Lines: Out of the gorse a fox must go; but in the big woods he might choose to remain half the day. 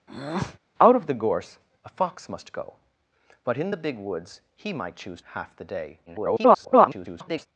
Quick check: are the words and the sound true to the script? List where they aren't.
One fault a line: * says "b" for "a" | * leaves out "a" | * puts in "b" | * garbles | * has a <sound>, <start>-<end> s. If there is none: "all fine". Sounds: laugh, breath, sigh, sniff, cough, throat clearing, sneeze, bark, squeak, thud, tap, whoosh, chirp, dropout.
* has a breath, 0.1-0.6 s
* leaves out "to remain"
* garbles